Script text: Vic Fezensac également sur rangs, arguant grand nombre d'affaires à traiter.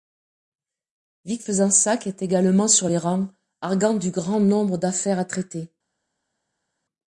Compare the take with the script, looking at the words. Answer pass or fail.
fail